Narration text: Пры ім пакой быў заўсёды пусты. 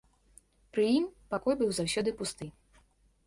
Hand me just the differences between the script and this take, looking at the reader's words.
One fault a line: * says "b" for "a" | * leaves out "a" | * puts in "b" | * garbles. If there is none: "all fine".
all fine